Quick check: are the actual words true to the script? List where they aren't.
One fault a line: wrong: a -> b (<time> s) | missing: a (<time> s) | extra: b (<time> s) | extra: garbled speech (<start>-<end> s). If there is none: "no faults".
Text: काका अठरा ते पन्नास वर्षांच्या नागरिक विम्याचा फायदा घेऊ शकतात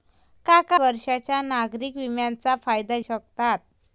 missing: अठरा ते पन्नास (0.8 s)
missing: घेऊ (3.0 s)